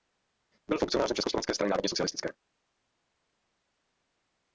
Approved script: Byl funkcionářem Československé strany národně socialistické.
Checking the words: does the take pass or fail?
pass